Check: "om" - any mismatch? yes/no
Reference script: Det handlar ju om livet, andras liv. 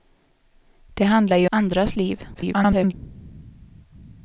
yes